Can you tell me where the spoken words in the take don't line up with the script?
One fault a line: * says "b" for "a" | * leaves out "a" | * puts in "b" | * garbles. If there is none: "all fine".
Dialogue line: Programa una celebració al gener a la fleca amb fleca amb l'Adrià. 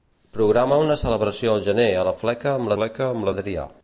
all fine